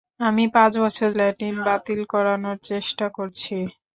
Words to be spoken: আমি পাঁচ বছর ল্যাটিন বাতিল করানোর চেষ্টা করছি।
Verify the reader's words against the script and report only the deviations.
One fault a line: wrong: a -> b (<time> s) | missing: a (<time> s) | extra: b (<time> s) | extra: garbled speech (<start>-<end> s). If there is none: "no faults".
no faults